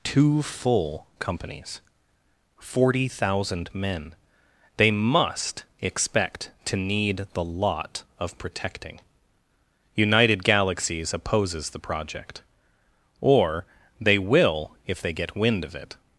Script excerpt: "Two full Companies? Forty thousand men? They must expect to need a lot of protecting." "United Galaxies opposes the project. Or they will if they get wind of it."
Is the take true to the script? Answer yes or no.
no